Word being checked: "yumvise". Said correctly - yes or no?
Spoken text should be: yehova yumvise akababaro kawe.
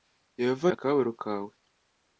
no